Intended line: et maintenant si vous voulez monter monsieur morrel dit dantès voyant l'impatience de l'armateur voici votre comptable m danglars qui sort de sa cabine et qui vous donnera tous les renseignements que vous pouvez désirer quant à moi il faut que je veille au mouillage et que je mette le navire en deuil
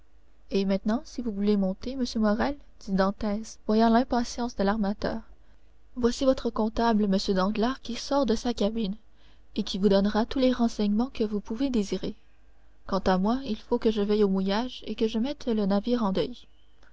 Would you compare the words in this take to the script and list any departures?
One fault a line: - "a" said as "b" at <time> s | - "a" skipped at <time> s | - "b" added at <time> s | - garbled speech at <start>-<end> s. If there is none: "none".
none